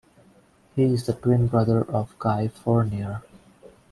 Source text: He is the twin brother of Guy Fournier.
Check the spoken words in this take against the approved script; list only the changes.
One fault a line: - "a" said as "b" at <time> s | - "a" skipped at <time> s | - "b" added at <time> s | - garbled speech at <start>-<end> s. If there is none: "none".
none